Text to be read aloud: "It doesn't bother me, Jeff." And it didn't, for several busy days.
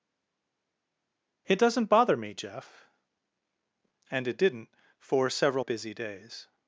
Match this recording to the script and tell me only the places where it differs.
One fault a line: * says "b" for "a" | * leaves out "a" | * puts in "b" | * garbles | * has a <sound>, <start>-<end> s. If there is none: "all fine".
all fine